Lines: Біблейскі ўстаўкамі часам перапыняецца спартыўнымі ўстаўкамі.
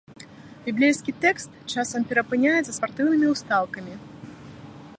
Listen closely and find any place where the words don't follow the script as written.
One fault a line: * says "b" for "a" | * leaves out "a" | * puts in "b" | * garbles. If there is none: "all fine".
* says "тэкст" for "ўстаўкамі"